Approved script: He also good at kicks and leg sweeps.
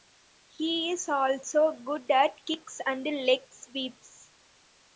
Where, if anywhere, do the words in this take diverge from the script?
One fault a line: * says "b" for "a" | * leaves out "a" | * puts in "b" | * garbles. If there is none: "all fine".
* puts in "is"